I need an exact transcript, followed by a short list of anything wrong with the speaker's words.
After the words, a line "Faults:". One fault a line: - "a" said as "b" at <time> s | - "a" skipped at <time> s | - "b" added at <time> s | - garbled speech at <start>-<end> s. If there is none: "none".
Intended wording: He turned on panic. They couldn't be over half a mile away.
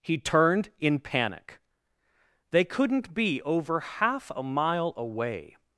He turned in panic. They couldn't be over half a mile away.
Faults:
- "on" said as "in" at 0.8 s